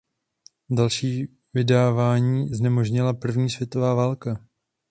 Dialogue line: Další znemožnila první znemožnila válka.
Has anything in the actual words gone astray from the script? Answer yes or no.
yes